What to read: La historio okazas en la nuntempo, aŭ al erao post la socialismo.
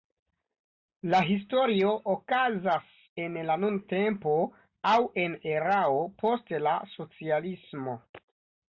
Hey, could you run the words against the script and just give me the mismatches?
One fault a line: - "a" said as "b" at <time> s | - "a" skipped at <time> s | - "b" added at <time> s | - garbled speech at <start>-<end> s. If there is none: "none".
- "al" said as "en" at 5.3 s